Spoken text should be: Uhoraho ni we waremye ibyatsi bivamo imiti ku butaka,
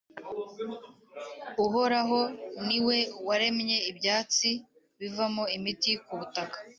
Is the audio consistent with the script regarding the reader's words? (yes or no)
yes